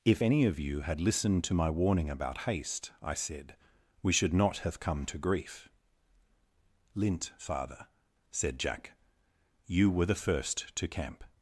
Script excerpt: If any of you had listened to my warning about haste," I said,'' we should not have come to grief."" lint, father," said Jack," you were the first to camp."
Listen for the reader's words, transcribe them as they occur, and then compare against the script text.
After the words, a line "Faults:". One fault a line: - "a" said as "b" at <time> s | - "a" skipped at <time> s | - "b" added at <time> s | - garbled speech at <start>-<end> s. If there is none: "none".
If any of you had listened to my warning about haste," I said,'' we should not have come to grief."" lint, father," said Jack," you were the first to camp."
Faults:
none